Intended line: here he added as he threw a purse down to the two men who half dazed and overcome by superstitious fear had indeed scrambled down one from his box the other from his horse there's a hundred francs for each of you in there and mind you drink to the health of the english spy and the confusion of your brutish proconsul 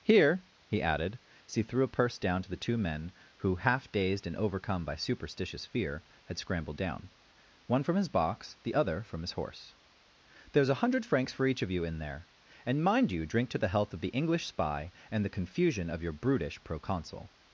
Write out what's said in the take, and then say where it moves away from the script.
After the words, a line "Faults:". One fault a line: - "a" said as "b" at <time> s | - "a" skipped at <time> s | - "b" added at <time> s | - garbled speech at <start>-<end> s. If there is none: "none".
here he added as he threw a purse down to the two men who half dazed and overcome by superstitious fear had scrambled down one from his box the other from his horse there's a hundred francs for each of you in there and mind you drink to the health of the english spy and the confusion of your brutish proconsul
Faults:
- "indeed" skipped at 6.4 s